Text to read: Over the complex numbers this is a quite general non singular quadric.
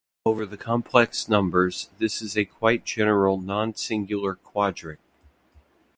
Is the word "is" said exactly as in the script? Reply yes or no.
yes